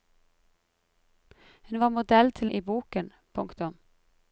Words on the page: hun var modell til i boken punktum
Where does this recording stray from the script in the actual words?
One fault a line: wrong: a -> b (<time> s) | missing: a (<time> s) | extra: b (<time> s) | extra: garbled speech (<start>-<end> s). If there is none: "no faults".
no faults